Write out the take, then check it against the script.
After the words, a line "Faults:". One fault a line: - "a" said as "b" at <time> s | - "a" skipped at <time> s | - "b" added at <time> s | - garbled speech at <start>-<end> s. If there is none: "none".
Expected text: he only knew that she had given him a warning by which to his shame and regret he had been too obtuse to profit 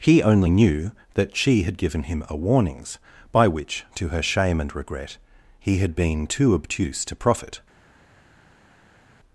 he only knew that she had given him a warnings by which to her shame and regret he had been too obtuse to profit
Faults:
- "warning" said as "warnings" at 2.3 s
- "his" said as "her" at 4.1 s